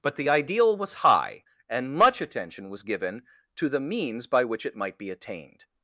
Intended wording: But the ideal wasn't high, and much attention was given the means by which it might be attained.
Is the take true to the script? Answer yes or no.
no